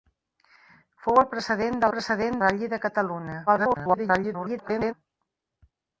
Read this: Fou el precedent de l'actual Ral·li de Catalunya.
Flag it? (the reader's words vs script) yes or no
yes